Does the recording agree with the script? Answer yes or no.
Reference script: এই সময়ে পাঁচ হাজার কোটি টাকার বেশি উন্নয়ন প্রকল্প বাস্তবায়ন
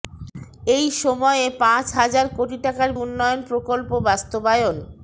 no